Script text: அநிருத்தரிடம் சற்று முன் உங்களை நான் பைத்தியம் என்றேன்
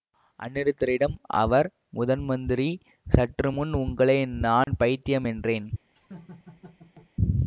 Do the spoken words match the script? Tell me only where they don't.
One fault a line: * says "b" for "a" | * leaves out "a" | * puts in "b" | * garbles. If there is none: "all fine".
* puts in "அவர் முதன்மந்திரி"